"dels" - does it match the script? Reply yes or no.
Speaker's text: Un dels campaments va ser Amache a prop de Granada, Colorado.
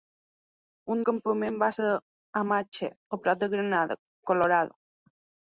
no